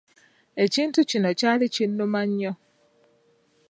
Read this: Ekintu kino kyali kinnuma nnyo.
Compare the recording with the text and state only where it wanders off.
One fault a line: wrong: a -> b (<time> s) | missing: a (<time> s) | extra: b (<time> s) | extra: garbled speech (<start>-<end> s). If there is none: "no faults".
no faults